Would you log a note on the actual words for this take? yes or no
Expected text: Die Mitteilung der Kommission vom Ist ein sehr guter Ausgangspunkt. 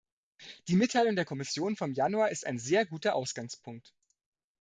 yes